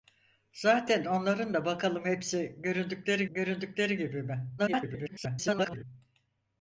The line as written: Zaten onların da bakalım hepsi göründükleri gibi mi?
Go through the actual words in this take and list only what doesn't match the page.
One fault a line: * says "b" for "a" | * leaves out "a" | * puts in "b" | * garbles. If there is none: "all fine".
* puts in "göründükleri"
* garbles